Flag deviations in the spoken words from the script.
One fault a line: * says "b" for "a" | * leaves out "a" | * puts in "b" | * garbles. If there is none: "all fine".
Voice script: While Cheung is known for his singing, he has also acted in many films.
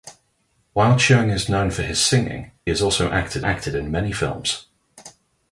* leaves out "he"
* puts in "acted"